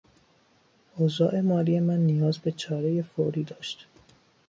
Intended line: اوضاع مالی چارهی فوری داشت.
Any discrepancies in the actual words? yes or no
yes